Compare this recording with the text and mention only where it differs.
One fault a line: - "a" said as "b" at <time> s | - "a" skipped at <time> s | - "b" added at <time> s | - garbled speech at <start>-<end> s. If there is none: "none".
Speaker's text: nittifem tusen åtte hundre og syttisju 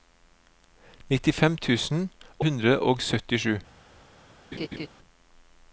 - "åtte" skipped at 2.0 s